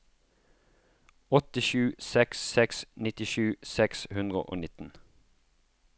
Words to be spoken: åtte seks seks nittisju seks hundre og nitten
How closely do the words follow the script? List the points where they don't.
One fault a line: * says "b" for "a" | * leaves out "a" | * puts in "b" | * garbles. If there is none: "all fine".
* puts in "sju"